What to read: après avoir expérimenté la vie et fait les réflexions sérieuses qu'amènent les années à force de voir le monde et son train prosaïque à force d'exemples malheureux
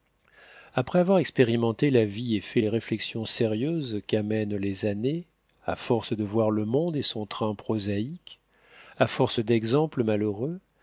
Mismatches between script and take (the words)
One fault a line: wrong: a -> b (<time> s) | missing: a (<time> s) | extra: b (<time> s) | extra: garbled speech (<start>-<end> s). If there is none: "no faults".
no faults